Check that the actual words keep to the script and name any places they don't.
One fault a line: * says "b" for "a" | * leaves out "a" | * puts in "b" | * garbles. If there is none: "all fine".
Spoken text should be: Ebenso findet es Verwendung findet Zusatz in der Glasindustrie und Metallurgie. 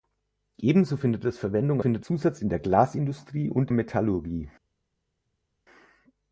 all fine